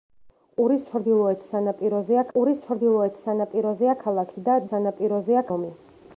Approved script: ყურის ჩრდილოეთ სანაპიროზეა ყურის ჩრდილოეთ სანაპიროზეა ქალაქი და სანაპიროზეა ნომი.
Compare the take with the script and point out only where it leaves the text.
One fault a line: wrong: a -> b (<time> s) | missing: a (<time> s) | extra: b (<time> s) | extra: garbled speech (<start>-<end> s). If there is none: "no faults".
no faults